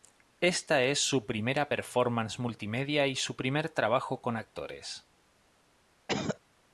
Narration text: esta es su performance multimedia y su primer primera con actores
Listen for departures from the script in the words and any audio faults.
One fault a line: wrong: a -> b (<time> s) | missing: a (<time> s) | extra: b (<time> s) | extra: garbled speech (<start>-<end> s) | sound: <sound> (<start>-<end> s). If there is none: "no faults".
extra: primera (1.3 s)
wrong: primera -> trabajo (3.7 s)
sound: cough (6.1-6.4 s)